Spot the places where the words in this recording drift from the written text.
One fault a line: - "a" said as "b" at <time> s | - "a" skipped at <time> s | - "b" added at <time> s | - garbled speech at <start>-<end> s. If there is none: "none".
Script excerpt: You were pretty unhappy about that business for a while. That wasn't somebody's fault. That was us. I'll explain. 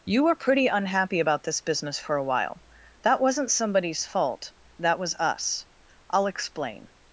- "that" said as "this" at 1.4 s